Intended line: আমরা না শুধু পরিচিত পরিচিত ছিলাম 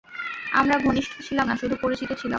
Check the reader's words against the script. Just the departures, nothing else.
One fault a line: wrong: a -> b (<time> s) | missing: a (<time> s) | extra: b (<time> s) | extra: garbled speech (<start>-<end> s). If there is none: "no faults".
extra: ঘনিষ্ঠ ছিলাম (0.8 s)
missing: পরিচিত (2.1 s)